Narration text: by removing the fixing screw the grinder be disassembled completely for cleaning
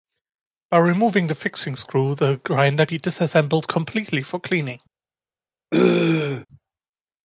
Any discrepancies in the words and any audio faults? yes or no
yes